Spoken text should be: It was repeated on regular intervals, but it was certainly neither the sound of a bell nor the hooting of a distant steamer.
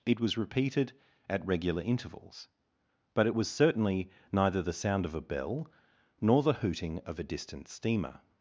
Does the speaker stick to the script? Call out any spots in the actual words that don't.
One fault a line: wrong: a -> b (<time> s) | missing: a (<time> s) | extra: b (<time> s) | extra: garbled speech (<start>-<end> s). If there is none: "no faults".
wrong: on -> at (1.3 s)